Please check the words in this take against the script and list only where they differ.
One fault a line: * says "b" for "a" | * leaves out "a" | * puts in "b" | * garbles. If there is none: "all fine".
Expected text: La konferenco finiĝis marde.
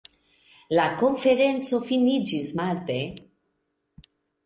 all fine